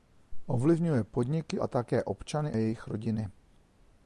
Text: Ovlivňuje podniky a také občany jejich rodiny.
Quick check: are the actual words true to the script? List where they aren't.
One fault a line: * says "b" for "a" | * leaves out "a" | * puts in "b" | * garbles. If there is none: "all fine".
all fine